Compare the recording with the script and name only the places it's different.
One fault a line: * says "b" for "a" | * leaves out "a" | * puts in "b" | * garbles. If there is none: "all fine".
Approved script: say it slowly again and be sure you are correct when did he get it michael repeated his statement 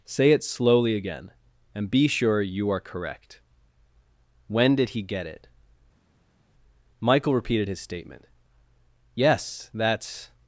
* puts in "yes that's"